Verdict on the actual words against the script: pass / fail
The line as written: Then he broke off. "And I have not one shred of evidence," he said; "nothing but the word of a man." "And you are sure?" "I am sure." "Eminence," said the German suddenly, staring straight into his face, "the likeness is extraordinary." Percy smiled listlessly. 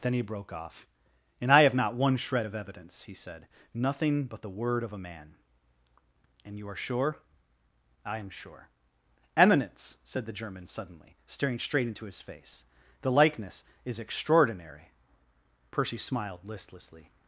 pass